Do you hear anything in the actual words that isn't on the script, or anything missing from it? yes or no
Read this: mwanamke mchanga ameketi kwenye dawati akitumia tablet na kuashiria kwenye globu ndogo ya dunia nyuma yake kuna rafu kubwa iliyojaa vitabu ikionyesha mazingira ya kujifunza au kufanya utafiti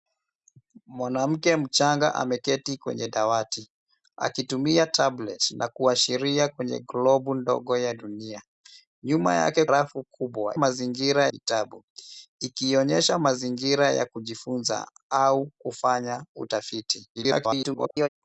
yes